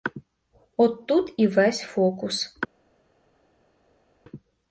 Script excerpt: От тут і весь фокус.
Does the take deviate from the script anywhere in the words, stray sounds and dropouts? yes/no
no